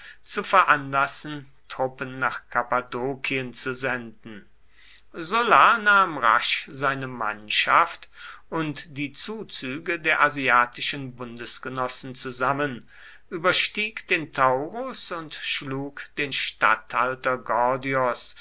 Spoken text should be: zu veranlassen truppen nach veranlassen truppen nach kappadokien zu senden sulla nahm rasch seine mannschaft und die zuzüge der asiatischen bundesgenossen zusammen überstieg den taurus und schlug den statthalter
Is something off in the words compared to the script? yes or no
yes